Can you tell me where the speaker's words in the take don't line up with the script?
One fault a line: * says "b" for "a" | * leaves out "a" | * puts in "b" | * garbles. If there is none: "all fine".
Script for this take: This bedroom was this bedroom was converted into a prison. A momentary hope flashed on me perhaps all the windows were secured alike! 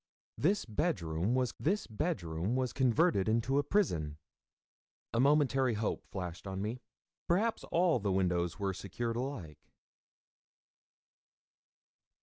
all fine